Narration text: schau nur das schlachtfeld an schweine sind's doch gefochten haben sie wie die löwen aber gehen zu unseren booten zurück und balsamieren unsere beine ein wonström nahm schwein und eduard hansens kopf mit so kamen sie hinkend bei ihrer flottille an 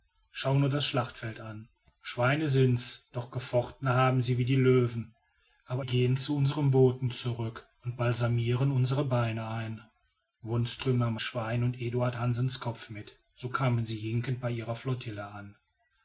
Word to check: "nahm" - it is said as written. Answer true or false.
true